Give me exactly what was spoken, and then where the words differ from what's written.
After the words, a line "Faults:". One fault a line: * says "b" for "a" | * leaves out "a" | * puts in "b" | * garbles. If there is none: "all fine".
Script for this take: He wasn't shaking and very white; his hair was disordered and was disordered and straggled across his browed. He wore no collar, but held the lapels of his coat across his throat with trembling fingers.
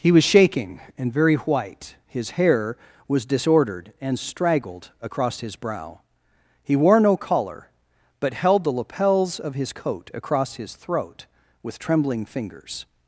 He was shaking and very white; his hair was disordered and straggled across his brow. He wore no collar, but held the lapels of his coat across his throat with trembling fingers.
Faults:
* says "was" for "wasn't"
* leaves out "was disordered and"
* says "brow" for "browed"